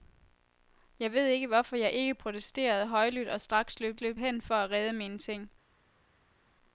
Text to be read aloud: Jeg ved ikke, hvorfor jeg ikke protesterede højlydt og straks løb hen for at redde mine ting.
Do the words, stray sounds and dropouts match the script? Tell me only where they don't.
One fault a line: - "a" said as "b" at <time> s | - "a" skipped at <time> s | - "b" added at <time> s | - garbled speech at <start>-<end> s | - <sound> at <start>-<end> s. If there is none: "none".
- "løb" added at 4.0 s